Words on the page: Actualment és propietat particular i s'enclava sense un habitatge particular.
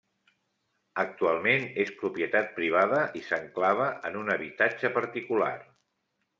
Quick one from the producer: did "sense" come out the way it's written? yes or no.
no